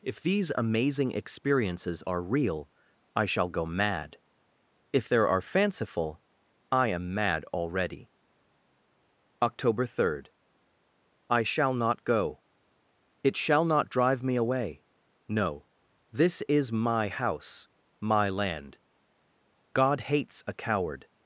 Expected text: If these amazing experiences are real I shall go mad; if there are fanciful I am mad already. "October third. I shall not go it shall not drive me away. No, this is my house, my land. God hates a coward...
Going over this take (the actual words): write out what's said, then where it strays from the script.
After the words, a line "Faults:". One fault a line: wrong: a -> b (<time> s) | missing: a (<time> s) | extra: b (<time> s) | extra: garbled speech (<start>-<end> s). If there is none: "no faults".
If these amazing experiences are real I shall go mad; if there are fanciful I am mad already. "October third. I shall not go it shall not drive me away. No, this is my house, my land. God hates a coward...
Faults:
no faults